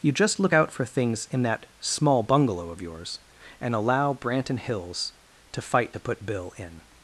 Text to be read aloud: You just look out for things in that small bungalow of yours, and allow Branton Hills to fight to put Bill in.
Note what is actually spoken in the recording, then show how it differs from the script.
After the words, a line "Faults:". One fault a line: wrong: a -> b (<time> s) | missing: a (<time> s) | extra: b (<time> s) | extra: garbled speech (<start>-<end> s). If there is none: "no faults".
You just look out for things in that small bungalow of yours, and allow Branton Hills to fight to put Bill in.
Faults:
no faults